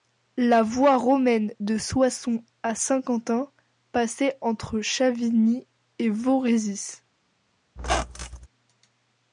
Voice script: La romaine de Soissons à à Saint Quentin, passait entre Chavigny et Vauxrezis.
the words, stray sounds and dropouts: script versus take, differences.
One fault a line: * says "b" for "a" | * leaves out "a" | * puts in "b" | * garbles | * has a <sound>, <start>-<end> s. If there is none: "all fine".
* puts in "voie"
* leaves out "à"
* has a squeak, 7.8-8.5 s